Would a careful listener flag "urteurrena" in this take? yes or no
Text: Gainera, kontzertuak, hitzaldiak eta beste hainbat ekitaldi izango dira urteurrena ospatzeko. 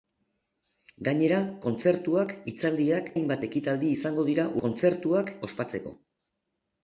yes